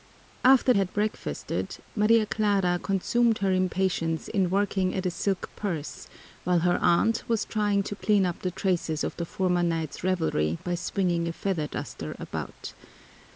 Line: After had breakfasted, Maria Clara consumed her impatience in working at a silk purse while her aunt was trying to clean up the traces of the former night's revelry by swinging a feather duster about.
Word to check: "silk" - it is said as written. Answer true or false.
true